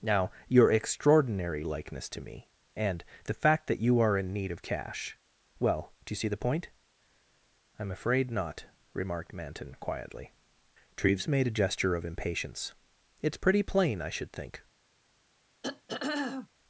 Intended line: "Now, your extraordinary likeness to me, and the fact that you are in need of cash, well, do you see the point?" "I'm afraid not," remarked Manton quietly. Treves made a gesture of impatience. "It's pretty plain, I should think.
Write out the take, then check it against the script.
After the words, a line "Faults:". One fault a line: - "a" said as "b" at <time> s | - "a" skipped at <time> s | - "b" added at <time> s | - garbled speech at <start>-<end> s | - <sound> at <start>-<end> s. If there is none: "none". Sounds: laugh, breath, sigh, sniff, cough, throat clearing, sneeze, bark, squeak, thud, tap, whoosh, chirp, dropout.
"Now, your extraordinary likeness to me, and the fact that you are in need of cash, well, do you see the point?" "I'm afraid not," remarked Manton quietly. Treves made a gesture of impatience. "It's pretty plain, I should think.
Faults:
- throat clearing at 15.6-16.5 s